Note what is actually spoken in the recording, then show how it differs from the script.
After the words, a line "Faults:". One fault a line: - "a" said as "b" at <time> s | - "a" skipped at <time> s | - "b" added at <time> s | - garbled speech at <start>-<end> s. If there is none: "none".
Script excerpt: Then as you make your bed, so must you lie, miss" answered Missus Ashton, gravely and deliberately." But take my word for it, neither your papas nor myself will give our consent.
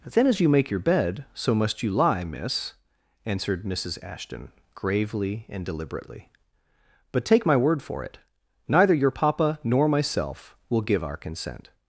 Then as you make your bed, so must you lie, miss" answered Missus Ashton, gravely and deliberately." But take my word for it, neither your papa nor myself will give our consent.
Faults:
- "papas" said as "papa" at 9.1 s